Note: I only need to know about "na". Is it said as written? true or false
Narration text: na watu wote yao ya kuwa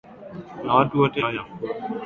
true